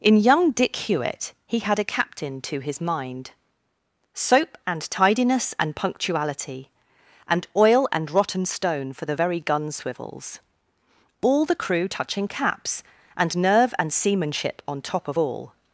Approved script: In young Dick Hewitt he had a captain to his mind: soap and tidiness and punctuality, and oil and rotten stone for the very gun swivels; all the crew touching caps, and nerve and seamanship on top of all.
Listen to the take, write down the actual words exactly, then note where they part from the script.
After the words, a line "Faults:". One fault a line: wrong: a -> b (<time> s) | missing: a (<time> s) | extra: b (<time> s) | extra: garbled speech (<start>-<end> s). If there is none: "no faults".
In young Dick Hewitt he had a captain to his mind: soap and tidiness and punctuality, and oil and rotten stone for the very gun swivels; all the crew touching caps, and nerve and seamanship on top of all.
Faults:
no faults